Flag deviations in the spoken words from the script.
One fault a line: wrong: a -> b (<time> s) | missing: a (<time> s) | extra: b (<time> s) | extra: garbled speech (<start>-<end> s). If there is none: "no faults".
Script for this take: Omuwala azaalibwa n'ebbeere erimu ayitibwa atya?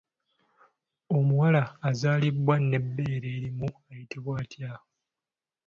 no faults